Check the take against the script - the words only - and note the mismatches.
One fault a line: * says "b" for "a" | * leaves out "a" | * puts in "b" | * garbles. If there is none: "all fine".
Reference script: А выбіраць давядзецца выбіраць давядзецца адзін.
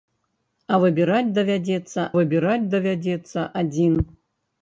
all fine